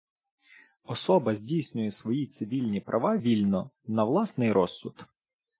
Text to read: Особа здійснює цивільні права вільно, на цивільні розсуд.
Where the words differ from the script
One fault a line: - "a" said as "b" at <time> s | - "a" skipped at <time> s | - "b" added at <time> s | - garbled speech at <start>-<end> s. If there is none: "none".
- "свої" added at 1.9 s
- "цивільні" said as "власний" at 4.0 s